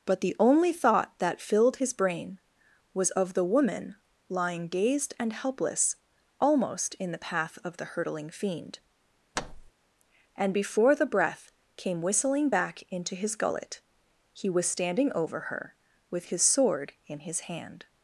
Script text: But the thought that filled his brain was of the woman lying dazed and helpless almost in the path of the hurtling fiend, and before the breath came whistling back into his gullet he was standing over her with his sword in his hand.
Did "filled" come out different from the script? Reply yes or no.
no